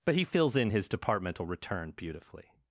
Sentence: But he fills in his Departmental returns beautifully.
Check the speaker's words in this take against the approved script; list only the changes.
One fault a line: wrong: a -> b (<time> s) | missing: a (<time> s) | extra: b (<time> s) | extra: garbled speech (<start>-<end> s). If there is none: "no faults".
wrong: returns -> return (1.4 s)